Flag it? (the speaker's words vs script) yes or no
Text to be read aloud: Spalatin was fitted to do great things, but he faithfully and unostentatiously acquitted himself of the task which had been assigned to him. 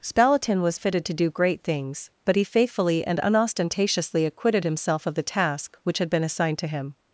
no